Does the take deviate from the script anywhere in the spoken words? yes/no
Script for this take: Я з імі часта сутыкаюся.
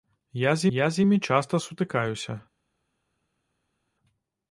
yes